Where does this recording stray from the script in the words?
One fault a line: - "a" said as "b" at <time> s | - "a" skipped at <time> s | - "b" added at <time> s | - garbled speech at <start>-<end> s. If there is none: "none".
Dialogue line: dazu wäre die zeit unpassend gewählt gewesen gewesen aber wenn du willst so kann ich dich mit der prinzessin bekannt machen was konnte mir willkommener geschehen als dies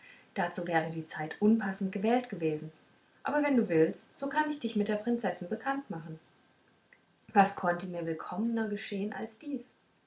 - "gewesen" skipped at 2.7 s